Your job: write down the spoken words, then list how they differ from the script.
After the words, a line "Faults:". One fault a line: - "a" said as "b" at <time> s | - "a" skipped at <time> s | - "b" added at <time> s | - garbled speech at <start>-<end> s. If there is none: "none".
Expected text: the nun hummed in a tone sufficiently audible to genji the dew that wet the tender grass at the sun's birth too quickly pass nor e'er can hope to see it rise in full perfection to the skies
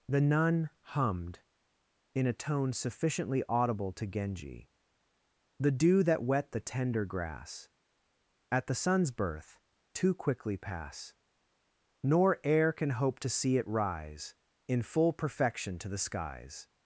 the nun hummed in a tone sufficiently audible to genji the dew that wet the tender grass at the sun's birth too quickly pass nor e'er can hope to see it rise in full perfection to the skies
Faults:
none